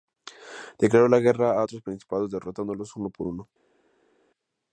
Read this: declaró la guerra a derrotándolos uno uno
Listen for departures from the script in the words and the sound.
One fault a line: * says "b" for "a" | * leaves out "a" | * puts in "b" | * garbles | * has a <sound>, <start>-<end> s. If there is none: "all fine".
* puts in "otros principados"
* puts in "por"